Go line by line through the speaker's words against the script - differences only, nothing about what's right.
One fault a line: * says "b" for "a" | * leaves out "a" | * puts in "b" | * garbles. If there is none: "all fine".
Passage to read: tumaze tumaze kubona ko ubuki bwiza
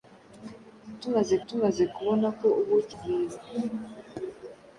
all fine